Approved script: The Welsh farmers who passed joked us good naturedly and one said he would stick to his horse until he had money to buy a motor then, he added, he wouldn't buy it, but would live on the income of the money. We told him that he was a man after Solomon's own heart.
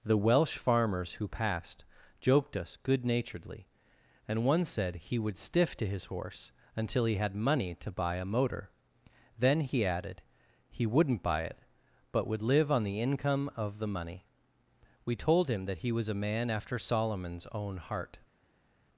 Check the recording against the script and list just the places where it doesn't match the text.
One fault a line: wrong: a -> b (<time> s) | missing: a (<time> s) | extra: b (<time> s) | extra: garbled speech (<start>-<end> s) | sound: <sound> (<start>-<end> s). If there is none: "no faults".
wrong: stick -> stiff (5.4 s)